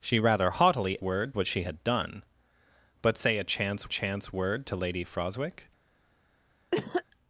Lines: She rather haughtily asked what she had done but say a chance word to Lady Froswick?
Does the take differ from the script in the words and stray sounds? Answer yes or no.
yes